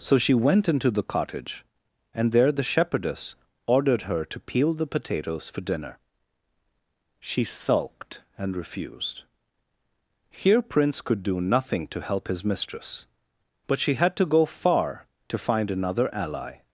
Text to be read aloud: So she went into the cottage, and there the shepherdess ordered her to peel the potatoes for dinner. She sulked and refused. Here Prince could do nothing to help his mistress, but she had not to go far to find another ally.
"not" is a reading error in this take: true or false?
true